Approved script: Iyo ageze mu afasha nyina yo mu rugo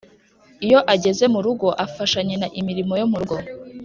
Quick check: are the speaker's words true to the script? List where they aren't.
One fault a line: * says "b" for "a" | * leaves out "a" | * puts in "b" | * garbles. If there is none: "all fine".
* puts in "rugo"
* puts in "imirimo"